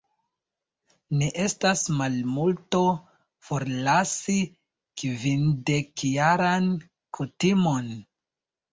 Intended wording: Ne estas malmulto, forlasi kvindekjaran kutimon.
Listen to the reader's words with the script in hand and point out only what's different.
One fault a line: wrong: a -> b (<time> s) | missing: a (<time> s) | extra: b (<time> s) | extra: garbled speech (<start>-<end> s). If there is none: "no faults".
no faults